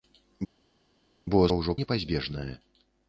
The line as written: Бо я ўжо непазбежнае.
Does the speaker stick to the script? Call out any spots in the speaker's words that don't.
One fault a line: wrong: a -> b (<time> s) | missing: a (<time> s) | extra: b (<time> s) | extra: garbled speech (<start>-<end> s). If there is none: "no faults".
no faults